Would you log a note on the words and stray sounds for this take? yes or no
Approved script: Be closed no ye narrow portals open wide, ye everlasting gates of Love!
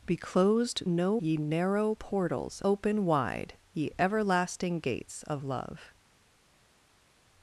no